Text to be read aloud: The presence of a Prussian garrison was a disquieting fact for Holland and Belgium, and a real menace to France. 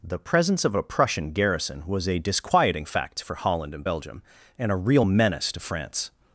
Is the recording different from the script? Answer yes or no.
no